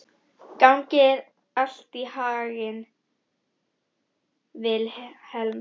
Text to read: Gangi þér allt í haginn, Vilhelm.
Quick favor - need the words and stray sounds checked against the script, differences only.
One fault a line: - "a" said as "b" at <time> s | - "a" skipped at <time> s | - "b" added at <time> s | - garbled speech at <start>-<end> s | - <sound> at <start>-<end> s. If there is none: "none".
none